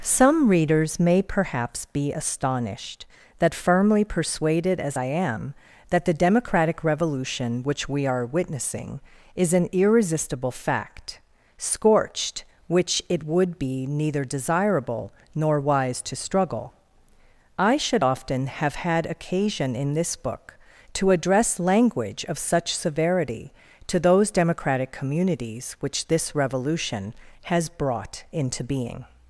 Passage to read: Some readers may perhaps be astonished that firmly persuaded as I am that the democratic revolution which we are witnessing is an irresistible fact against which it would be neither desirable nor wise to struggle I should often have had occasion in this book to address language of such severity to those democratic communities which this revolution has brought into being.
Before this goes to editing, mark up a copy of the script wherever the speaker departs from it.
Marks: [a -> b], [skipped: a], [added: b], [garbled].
Some readers may perhaps be astonished that firmly persuaded as I am that the democratic revolution which we are witnessing is an irresistible fact [against -> scorched] which it would be neither desirable nor wise to struggle I should often have had occasion in this book to address language of such severity to those democratic communities which this revolution has brought into being.